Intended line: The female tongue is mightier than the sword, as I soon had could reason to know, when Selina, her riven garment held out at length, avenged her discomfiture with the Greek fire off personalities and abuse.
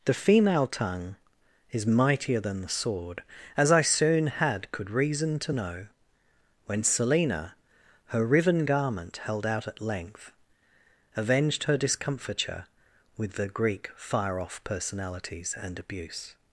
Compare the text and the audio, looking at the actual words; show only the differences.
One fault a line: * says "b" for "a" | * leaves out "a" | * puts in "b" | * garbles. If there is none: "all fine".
all fine